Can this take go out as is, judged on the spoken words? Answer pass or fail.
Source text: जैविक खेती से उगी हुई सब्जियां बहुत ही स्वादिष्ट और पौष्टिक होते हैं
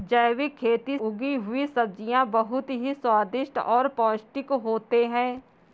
fail